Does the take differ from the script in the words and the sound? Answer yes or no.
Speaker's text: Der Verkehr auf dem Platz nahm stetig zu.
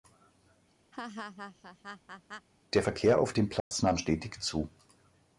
yes